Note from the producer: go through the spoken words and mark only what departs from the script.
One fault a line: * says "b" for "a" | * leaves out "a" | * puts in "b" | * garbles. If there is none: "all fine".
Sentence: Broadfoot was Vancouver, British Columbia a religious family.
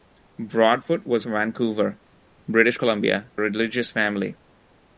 all fine